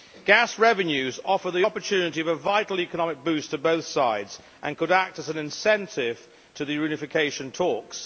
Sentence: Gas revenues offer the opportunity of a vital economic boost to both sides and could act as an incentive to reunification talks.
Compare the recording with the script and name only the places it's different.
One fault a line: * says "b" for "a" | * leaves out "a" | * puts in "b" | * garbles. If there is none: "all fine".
* puts in "the"